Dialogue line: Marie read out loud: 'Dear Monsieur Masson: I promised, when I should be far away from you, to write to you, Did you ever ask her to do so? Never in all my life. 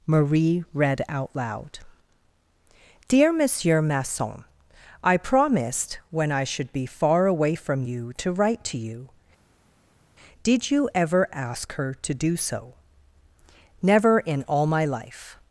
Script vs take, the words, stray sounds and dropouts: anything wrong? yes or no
no